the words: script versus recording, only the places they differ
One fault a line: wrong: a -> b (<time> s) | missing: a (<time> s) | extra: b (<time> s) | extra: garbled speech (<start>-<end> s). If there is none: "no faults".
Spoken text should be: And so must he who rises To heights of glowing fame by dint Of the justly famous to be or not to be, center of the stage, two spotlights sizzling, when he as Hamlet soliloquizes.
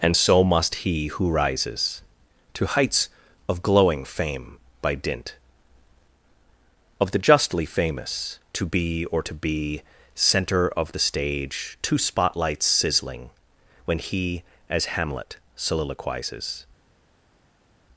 missing: not (9.2 s)